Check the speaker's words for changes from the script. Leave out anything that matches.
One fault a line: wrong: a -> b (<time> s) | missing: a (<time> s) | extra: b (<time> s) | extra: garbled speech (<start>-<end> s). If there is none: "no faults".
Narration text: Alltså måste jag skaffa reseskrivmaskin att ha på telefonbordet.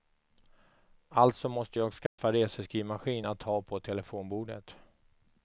no faults